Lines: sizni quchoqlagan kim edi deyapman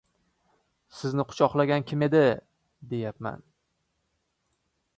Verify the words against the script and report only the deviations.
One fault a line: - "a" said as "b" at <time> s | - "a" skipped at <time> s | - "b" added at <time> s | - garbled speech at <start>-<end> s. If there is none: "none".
none